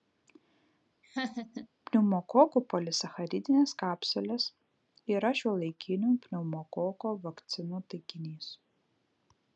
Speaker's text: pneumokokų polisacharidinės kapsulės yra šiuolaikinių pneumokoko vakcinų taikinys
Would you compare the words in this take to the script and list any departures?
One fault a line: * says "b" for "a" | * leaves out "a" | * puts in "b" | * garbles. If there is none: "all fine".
all fine